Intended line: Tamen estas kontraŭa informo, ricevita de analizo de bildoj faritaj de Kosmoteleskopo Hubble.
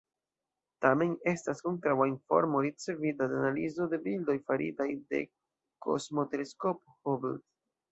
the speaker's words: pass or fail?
pass